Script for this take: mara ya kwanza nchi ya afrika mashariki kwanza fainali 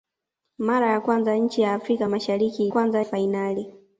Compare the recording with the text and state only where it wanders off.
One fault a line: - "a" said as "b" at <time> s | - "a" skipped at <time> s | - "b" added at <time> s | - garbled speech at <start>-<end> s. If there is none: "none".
none